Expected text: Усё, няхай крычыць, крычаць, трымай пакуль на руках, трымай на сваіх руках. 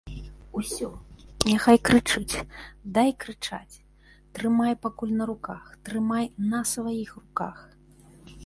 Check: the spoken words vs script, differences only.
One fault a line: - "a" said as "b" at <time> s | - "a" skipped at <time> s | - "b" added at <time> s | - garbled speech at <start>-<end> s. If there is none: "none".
- "дай" added at 3.0 s